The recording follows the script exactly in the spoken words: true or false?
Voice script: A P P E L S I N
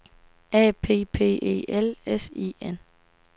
true